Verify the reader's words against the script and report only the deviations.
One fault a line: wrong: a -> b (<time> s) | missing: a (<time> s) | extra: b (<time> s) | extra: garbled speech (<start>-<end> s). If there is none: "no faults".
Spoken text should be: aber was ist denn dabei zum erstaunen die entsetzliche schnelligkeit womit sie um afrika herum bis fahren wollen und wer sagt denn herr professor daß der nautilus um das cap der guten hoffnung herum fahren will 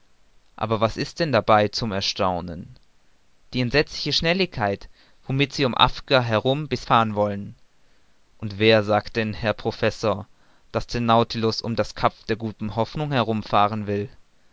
no faults